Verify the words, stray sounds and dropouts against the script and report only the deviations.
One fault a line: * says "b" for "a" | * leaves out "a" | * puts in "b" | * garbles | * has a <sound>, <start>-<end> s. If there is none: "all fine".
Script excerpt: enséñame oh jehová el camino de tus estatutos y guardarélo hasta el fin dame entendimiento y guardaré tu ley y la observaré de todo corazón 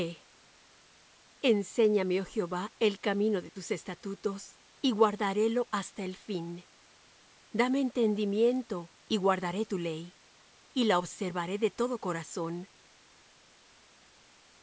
all fine